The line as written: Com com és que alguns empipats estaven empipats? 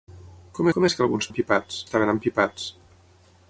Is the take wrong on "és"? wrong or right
right